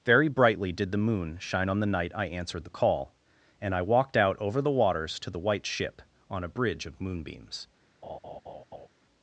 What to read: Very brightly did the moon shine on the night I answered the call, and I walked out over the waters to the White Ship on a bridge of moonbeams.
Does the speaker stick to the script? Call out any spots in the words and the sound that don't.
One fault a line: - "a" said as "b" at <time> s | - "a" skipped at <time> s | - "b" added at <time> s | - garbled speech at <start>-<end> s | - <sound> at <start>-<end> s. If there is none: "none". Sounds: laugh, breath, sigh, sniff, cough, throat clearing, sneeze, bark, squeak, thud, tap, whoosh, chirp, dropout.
- laugh at 8.0-8.9 s